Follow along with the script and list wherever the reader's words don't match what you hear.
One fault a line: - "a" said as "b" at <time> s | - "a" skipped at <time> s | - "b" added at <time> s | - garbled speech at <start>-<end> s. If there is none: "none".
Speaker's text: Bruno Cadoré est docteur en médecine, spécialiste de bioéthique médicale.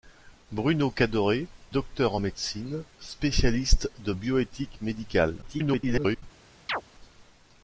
- "est" skipped at 1.4 s
- garbled speech at 5.4-6.2 s